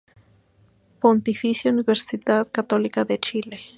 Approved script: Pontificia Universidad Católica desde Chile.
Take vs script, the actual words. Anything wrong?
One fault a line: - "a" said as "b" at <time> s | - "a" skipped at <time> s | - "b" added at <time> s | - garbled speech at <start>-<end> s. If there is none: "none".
- "desde" said as "de" at 3.0 s